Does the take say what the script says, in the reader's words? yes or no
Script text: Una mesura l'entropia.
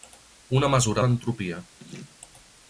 yes